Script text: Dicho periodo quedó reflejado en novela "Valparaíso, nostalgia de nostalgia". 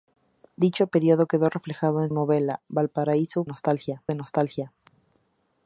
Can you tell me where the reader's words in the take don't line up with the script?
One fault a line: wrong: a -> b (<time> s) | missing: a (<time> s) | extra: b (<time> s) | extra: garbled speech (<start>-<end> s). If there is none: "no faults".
no faults